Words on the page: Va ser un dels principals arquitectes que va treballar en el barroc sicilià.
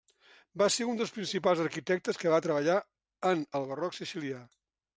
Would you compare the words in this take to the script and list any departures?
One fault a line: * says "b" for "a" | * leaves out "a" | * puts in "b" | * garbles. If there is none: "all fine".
all fine